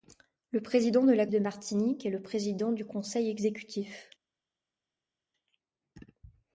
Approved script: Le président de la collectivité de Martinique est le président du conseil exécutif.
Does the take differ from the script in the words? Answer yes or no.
yes